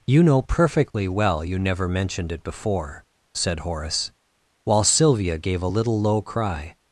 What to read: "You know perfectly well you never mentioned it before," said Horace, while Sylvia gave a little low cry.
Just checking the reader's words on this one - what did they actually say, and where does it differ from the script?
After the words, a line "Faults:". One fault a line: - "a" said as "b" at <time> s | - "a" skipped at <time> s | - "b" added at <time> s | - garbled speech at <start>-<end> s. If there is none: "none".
"You know perfectly well you never mentioned it before," said Horace, while Sylvia gave a little low cry.
Faults:
none